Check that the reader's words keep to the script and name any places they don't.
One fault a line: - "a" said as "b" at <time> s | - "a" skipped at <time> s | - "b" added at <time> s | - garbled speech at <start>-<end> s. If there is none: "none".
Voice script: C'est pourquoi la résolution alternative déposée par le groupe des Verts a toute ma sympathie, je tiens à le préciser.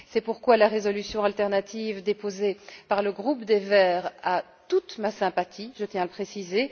none